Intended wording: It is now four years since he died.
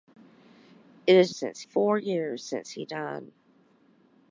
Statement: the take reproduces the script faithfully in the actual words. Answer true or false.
false